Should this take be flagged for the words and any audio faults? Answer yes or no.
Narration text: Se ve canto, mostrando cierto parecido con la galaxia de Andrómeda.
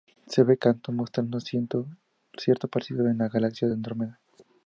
no